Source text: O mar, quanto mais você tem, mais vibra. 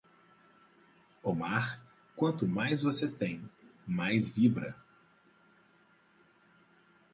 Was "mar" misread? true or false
false